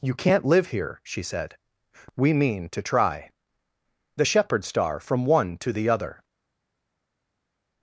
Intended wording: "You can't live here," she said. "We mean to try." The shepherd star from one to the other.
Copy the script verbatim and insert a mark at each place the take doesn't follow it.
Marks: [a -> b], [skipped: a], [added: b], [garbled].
"You can't live here," she said. "We mean to try." The shepherd star from one to the other.